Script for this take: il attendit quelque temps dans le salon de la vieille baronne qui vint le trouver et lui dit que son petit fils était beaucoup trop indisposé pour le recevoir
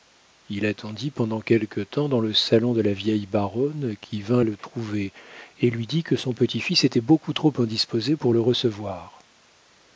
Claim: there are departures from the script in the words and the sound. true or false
true